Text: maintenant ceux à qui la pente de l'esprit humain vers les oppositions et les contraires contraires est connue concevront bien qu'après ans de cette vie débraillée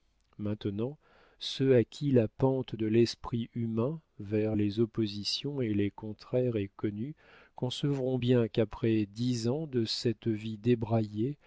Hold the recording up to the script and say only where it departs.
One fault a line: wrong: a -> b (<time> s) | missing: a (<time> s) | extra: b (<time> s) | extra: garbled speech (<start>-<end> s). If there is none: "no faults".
missing: contraires (6.6 s)
extra: dix (9.1 s)